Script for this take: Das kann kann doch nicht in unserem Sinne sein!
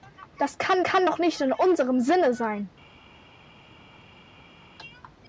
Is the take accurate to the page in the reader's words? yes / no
yes